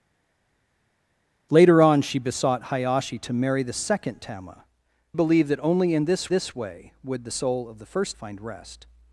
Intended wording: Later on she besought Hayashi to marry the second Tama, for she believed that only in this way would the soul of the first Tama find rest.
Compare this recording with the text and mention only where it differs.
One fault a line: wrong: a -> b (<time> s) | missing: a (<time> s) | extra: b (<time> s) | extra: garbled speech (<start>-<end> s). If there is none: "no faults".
missing: for she (4.6 s)
extra: this (6.3 s)
missing: Tama (8.2 s)